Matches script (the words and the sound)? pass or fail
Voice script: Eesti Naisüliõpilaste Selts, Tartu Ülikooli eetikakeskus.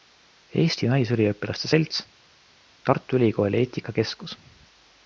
pass